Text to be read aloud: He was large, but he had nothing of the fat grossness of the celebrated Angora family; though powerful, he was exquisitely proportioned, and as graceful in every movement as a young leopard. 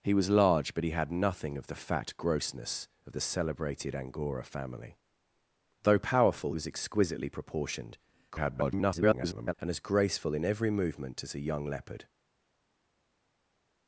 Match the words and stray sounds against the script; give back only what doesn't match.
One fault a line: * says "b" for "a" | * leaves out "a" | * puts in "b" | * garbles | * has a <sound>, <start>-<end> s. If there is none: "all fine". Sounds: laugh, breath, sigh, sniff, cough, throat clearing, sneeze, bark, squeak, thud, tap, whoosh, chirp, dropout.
* leaves out "he"
* garbles